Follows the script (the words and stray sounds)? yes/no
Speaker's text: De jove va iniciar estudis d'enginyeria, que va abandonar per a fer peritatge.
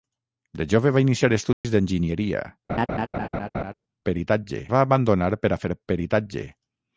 no